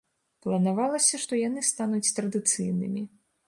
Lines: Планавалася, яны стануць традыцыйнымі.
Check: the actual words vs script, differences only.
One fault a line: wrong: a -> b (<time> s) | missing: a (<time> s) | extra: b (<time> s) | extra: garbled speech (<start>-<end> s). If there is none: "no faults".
extra: што (1.2 s)